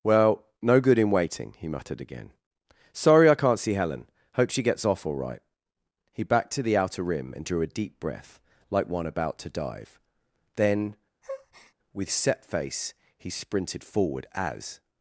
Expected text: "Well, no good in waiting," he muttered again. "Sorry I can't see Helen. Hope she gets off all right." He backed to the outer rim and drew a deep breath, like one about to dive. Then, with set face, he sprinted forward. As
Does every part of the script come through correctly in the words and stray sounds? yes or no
no